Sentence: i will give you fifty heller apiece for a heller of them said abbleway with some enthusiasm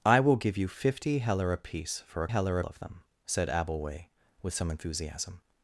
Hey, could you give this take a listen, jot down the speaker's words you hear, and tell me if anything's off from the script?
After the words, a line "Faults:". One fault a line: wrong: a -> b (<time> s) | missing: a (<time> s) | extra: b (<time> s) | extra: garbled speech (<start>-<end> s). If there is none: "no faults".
i will give you fifty heller apiece for a heller of them said abbleway with some enthusiasm
Faults:
no faults